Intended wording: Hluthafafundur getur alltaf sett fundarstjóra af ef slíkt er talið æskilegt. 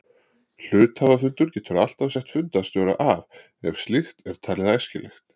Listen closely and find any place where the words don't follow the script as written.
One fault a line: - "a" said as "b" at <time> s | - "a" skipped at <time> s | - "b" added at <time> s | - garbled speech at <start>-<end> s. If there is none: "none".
none